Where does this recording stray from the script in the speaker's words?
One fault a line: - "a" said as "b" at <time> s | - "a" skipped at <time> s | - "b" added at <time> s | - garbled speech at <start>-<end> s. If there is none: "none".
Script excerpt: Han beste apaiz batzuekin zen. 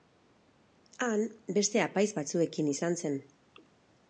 - "izan" added at 2.8 s